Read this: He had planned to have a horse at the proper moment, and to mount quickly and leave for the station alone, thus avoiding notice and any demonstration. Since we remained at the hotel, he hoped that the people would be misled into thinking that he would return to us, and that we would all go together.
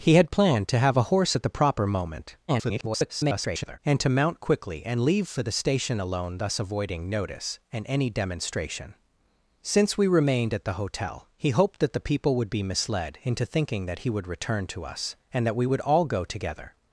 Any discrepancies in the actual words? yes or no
yes